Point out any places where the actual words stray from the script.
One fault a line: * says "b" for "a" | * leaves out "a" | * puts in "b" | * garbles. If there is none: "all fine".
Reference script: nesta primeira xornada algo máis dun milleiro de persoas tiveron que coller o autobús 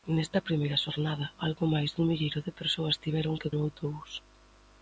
* leaves out "coller"